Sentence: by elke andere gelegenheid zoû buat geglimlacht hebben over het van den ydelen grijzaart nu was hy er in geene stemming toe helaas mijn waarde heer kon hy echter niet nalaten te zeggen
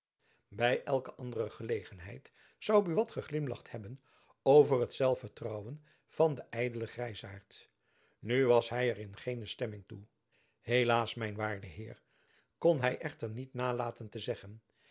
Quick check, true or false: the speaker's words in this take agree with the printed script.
false